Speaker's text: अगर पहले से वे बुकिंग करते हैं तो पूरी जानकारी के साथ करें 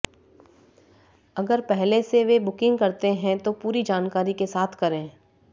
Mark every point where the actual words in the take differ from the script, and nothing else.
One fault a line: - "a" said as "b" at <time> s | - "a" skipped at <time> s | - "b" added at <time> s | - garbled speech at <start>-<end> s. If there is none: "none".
none